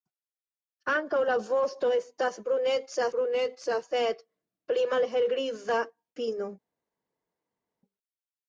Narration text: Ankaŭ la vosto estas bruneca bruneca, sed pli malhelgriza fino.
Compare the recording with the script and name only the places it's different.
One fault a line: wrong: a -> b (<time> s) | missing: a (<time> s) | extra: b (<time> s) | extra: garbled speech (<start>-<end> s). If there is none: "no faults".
no faults